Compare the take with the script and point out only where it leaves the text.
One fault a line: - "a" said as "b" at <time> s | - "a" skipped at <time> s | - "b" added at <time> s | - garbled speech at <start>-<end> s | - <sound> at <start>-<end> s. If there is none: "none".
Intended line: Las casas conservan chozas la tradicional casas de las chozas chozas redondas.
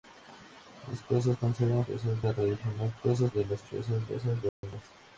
- dropout at 4.5-4.6 s